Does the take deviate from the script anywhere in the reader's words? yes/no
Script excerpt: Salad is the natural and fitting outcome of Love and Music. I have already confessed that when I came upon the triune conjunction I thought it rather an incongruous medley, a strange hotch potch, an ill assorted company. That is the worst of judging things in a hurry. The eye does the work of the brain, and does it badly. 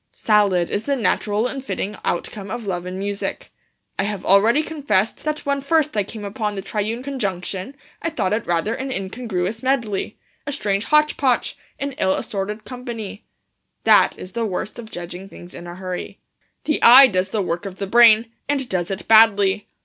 yes